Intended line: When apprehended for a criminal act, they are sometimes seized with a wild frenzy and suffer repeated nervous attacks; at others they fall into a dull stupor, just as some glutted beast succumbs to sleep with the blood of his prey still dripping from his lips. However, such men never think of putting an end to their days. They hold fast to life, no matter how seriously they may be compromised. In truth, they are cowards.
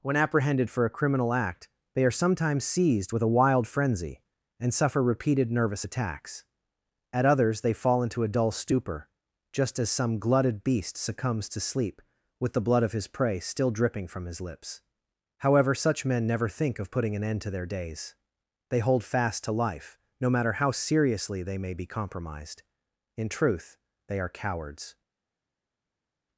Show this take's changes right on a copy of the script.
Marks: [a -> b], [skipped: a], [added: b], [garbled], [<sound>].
When apprehended for a criminal act, they are sometimes seized with a wild frenzy and suffer repeated nervous attacks; at others they fall into a dull stupor, just as some glutted beast succumbs to sleep with the blood of his prey still dripping from his lips. However, such men never think of putting an end to their days. They hold fast to life, no matter how seriously they may be compromised. In truth, they are cowards.